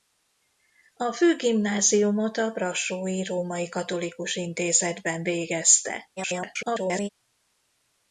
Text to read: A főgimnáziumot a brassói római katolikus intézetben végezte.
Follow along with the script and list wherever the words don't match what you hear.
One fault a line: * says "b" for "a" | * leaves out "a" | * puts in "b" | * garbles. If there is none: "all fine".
* garbles